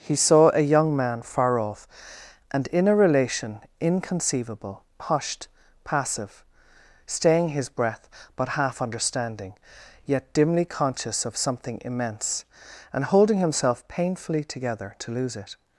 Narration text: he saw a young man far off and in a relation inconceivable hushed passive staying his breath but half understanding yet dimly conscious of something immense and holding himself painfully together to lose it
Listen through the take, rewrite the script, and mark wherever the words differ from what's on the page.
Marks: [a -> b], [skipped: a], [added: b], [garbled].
he saw a young man far off and in a relation inconceivable hushed passive staying his breath but half understanding yet dimly conscious of something immense and holding himself painfully together to lose it